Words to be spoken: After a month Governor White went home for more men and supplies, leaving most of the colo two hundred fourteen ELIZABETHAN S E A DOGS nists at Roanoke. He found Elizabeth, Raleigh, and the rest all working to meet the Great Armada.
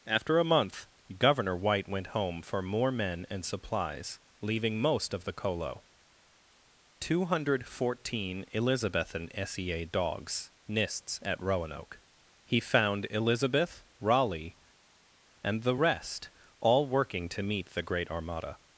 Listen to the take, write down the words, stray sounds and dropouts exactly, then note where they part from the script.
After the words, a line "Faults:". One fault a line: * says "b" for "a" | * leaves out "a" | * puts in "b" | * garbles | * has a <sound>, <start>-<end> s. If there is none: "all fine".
After a month Governor White went home for more men and supplies, leaving most of the colo two hundred fourteen ELIZABETHAN S E A DOGS nists at Roanoke. He found Elizabeth, Raleigh, and the rest all working to meet the Great Armada.
Faults:
all fine